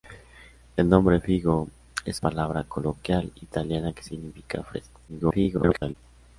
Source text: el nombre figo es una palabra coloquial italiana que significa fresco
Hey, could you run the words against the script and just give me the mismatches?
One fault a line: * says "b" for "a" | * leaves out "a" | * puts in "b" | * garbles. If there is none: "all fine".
* leaves out "una"
* garbles